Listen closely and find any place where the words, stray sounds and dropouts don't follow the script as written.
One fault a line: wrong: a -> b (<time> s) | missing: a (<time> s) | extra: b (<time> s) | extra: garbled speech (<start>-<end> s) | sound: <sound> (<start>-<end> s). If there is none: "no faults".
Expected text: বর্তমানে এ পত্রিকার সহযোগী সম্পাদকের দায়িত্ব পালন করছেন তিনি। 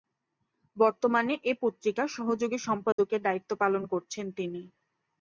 sound: dropout (2.9-3.0 s)